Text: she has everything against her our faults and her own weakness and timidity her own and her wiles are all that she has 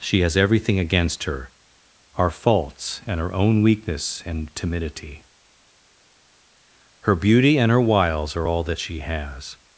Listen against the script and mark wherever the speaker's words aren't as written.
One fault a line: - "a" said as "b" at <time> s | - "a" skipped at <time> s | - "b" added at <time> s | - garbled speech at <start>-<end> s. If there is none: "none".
- "own" said as "beauty" at 7.1 s